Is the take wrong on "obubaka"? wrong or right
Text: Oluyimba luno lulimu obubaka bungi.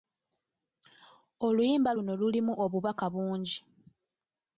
right